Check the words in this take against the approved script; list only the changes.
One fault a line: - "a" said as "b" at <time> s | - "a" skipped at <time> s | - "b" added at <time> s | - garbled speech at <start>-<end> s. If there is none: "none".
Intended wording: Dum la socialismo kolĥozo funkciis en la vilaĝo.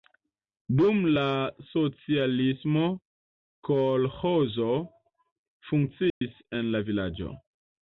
none